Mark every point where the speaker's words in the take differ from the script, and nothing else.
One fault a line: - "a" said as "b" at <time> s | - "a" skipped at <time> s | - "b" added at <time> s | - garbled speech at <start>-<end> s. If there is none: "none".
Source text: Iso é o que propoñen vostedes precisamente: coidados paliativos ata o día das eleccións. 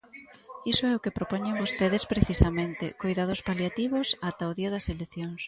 none